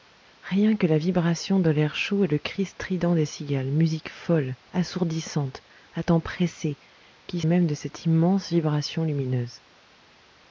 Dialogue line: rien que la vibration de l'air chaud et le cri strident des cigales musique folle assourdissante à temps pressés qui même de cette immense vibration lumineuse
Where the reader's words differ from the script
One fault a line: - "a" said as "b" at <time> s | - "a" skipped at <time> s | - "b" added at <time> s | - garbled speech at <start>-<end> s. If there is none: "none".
none